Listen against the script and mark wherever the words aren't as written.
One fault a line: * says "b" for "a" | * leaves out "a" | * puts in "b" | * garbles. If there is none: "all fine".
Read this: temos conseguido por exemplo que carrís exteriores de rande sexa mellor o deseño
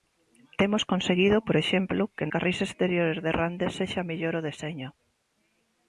all fine